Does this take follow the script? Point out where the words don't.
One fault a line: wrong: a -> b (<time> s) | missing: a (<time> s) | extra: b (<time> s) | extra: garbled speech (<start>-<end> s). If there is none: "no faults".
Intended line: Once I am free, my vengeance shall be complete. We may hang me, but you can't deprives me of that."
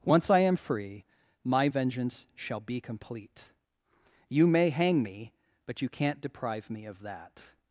wrong: We -> You (4.3 s)
wrong: deprives -> deprive (6.2 s)